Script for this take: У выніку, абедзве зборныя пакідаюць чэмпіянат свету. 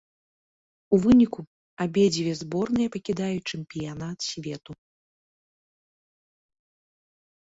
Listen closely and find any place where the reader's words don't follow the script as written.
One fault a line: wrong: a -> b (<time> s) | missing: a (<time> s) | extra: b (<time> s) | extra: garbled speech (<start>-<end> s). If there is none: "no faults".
no faults